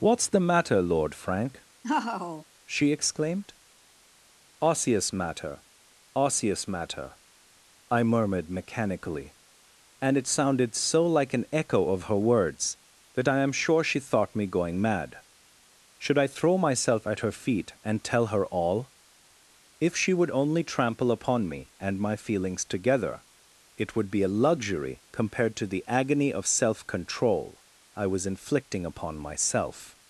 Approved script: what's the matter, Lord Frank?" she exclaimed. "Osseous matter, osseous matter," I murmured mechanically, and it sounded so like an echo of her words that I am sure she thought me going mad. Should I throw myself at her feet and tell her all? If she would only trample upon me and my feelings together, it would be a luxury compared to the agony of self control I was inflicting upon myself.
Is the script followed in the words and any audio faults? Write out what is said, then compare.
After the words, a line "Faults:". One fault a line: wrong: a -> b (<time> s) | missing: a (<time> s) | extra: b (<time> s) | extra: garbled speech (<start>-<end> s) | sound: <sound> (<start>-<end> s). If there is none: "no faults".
what's the matter, Lord Frank?" she exclaimed. "Osseous matter, osseous matter," I murmured mechanically, and it sounded so like an echo of her words that I am sure she thought me going mad. Should I throw myself at her feet and tell her all? If she would only trample upon me and my feelings together, it would be a luxury compared to the agony of self control I was inflicting upon myself.
Faults:
sound: laugh (1.8-2.5 s)